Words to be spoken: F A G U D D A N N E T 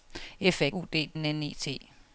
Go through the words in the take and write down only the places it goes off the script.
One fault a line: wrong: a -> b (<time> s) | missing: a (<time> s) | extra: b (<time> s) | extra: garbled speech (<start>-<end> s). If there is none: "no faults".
missing: G (0.7 s)
missing: D A (1.1 s)